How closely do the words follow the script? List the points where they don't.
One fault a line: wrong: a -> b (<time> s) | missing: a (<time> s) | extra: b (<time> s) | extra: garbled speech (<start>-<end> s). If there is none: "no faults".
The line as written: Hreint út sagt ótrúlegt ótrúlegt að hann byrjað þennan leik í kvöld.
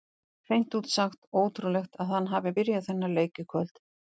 missing: ótrúlegt (2.0 s)
extra: hafi (2.3 s)